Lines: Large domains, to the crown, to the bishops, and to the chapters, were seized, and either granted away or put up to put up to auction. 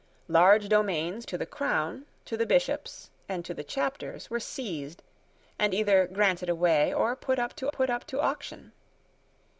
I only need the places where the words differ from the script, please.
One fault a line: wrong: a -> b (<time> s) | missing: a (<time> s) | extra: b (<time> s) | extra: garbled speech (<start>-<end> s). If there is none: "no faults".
no faults